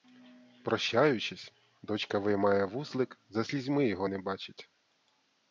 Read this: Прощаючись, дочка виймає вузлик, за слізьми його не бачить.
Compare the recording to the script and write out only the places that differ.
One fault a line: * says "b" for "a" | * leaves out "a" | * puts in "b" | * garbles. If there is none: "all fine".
all fine